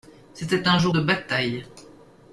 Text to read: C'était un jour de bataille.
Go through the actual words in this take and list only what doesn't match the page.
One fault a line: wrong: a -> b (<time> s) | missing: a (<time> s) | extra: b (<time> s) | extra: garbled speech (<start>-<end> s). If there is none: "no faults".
no faults